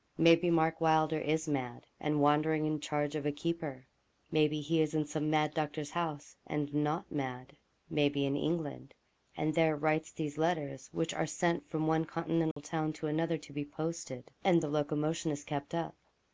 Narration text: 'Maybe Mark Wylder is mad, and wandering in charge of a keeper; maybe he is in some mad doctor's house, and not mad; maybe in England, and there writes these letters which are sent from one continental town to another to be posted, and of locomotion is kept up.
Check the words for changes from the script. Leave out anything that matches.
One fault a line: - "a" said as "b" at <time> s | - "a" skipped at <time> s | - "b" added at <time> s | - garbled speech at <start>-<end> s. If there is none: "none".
none